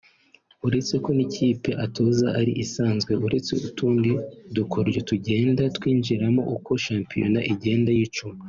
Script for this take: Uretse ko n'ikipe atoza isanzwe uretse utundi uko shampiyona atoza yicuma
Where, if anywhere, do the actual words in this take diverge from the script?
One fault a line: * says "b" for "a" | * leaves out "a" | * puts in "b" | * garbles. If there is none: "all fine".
* puts in "ari"
* puts in "dukoryo tugenda twinjiramo"
* says "igenda" for "atoza"